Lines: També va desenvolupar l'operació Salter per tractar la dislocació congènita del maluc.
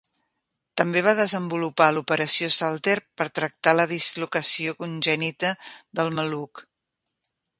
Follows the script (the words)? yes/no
yes